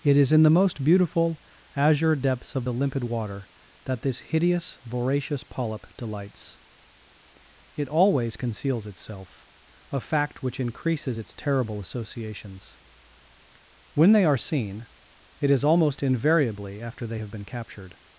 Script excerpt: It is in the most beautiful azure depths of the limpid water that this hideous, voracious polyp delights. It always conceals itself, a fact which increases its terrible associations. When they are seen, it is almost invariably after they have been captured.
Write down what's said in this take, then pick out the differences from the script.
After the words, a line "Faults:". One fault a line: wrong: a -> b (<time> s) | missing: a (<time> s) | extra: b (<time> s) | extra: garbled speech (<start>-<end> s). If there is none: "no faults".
It is in the most beautiful azure depths of the limpid water that this hideous, voracious polyp delights. It always conceals itself, a fact which increases its terrible associations. When they are seen, it is almost invariably after they have been captured.
Faults:
no faults